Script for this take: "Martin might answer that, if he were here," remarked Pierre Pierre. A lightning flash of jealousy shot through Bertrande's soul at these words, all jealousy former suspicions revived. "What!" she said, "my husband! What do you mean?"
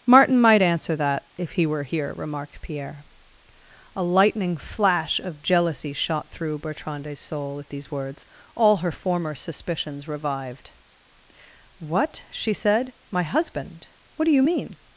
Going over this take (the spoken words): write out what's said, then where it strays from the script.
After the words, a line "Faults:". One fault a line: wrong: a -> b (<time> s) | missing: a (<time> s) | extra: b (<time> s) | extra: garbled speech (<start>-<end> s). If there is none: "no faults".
"Martin might answer that, if he were here," remarked Pierre. A lightning flash of jealousy shot through Bertrande's soul at these words, all her former suspicions revived. "What!" she said, "my husband! What do you mean?"
Faults:
missing: Pierre (3.0 s)
wrong: jealousy -> her (8.8 s)